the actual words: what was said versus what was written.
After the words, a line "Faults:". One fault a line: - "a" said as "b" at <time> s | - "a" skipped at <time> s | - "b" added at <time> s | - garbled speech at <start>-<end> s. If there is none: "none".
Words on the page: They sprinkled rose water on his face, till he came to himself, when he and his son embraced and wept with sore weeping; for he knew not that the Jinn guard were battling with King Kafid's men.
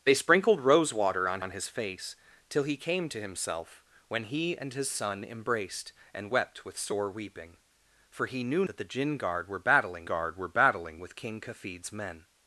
They sprinkled rose water on on his face, till he came to himself, when he and his son embraced and wept with sore weeping; for he knew that the Jinn guard were battling guard were battling with King Kafid's men.
Faults:
- "on" added at 1.4 s
- "not" skipped at 8.6 s
- "guard were battling" added at 10.0 s